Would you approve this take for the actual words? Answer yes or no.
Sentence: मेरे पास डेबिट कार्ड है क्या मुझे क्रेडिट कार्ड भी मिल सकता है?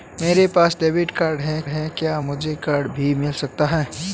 no